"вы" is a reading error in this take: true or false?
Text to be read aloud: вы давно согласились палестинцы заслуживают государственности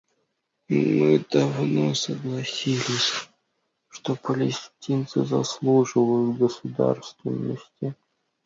true